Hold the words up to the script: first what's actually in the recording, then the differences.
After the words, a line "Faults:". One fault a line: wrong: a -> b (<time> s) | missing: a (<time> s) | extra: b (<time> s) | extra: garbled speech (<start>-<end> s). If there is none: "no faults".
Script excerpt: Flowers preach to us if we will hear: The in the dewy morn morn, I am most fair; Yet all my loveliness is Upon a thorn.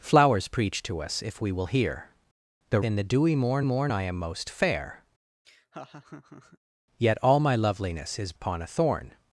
Flowers preach to us if we will hear: The in the dewy morn morn, I am most fair; Yet all my loveliness is Upon a thorn.
Faults:
no faults